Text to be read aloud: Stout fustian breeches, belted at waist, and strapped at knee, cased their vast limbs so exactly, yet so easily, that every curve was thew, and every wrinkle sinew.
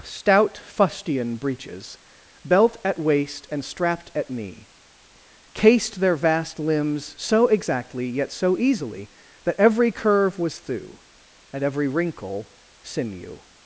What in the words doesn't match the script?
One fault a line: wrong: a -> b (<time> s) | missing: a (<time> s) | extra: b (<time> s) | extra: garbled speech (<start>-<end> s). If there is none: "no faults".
wrong: belted -> belt (2.4 s)